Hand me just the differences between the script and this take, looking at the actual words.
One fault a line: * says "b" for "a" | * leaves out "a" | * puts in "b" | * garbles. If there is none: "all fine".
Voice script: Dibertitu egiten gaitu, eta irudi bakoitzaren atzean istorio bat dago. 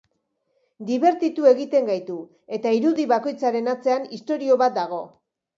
all fine